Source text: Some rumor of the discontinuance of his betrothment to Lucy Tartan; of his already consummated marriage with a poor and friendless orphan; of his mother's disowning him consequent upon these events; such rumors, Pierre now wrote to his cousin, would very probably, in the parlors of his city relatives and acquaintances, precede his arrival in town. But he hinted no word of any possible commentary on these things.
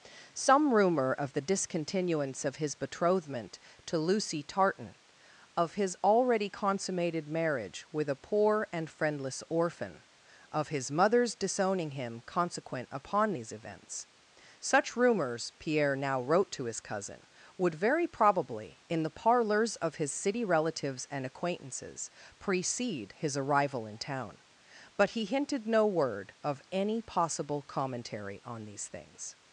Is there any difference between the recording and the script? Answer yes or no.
no